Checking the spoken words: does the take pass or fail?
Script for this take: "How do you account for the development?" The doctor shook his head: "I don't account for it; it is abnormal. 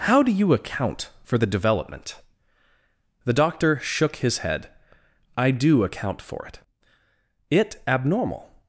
fail